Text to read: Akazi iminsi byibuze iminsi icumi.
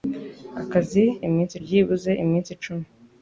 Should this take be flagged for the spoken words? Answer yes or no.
no